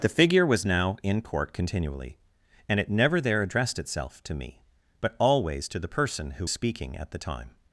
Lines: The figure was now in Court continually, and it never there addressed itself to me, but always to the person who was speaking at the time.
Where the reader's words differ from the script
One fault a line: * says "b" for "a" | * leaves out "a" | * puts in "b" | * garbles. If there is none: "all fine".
* leaves out "was"